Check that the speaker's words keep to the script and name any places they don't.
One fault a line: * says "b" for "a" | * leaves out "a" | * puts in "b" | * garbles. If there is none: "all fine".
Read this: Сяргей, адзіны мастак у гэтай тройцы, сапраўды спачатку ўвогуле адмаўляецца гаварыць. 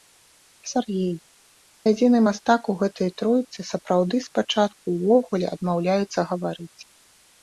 all fine